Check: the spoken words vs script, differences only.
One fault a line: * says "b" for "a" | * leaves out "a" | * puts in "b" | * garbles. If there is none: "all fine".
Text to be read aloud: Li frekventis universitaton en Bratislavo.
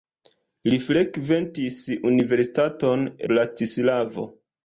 * leaves out "en"